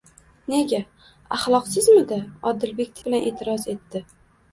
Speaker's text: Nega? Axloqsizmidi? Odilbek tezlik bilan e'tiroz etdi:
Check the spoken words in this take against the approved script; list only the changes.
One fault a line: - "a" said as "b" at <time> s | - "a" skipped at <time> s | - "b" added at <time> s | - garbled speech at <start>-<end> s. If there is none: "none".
- "tezlik" skipped at 3.0 s